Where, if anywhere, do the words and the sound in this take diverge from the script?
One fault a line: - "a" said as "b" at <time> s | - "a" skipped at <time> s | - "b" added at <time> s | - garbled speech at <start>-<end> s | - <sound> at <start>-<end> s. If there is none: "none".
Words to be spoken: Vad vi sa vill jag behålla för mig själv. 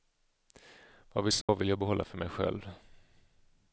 - dropout at 1.4-1.5 s